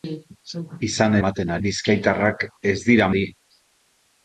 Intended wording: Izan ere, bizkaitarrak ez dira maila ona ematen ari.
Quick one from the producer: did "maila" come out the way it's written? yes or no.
no